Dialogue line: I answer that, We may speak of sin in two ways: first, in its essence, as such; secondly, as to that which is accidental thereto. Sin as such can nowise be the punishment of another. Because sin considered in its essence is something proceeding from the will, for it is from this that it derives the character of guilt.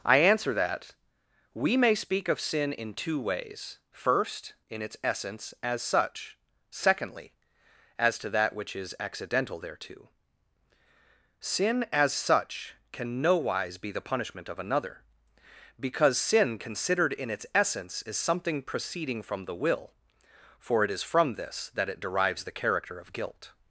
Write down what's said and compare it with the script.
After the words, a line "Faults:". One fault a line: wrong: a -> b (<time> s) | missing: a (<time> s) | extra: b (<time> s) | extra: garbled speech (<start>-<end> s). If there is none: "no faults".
I answer that, We may speak of sin in two ways: first, in its essence, as such; secondly, as to that which is accidental thereto. Sin as such can nowise be the punishment of another. Because sin considered in its essence is something proceeding from the will, for it is from this that it derives the character of guilt.
Faults:
no faults